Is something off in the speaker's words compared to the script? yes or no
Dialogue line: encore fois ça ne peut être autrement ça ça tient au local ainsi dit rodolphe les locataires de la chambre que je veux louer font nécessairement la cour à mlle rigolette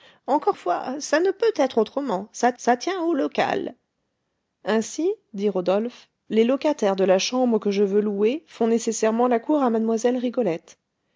no